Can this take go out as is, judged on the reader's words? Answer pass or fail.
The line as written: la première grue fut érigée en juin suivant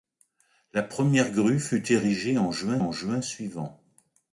fail